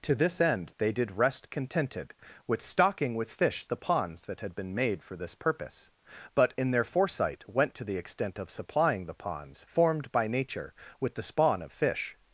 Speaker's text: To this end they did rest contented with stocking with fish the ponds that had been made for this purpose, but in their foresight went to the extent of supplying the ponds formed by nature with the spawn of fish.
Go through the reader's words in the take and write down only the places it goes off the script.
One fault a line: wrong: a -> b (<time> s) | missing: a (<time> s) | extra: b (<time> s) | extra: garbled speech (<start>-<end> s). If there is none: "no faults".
no faults